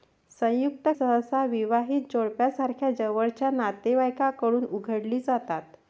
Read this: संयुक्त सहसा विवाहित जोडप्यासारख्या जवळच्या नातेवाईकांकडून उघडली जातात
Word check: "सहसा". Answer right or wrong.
right